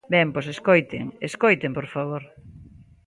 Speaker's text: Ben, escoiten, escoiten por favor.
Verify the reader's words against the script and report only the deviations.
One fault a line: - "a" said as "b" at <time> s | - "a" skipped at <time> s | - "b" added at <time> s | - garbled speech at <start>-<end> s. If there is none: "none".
- "pois" added at 0.3 s